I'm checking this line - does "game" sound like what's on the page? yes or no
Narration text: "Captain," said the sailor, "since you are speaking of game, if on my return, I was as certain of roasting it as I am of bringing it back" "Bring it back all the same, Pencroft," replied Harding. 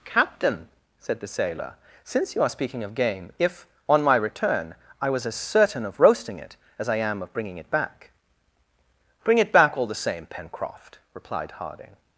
yes